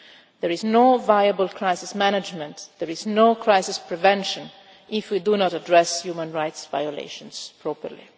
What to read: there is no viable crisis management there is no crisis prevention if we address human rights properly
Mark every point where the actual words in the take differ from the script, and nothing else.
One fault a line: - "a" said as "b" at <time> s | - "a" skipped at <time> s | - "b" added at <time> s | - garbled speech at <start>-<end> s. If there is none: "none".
- "do not" added at 5.2 s
- "violations" added at 6.7 s